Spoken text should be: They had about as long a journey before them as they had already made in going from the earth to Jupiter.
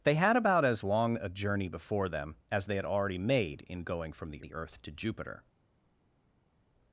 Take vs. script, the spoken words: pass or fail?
fail